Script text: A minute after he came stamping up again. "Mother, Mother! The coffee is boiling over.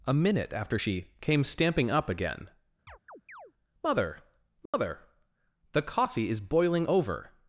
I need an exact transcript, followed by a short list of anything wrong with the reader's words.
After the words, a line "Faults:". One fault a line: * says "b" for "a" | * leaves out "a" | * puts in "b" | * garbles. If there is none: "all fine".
A minute after she came stamping up again. "Mother, Mother! The coffee is boiling over.
Faults:
* says "she" for "he"